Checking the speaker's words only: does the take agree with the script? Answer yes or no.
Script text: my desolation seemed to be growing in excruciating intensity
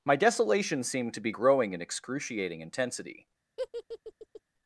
yes